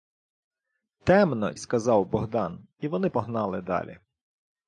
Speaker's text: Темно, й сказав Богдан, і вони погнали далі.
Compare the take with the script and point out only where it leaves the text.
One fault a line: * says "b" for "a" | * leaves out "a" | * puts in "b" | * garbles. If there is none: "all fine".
all fine